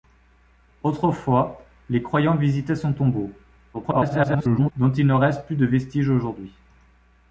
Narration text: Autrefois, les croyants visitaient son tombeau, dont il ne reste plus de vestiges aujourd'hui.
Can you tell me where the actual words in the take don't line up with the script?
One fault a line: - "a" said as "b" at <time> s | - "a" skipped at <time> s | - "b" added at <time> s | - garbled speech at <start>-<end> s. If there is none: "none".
- garbled speech at 3.7-4.7 s